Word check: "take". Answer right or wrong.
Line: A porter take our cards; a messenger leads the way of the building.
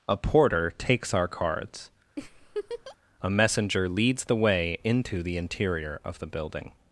wrong